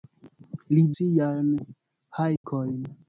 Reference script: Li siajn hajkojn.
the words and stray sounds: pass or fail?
fail